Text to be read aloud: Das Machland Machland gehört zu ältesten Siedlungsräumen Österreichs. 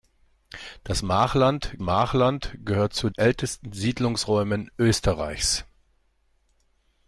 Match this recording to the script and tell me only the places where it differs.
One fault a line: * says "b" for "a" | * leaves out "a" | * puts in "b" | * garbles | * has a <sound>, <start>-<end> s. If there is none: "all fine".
all fine